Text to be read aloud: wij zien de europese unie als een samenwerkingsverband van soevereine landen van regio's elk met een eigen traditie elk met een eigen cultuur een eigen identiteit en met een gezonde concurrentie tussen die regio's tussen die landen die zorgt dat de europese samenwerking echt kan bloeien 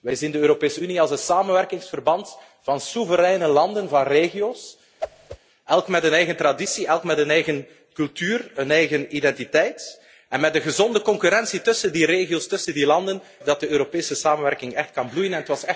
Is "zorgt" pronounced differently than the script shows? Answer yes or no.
yes